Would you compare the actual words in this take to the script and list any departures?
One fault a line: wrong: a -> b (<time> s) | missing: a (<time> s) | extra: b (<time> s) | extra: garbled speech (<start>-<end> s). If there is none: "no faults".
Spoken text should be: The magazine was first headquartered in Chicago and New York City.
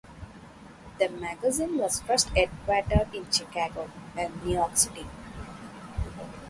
no faults